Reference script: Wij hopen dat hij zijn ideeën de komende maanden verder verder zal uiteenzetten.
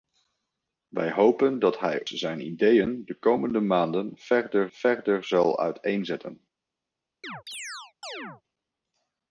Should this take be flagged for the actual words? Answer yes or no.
no